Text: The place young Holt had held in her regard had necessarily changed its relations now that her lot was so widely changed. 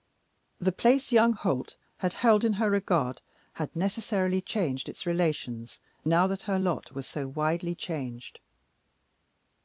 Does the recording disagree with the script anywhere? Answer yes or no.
no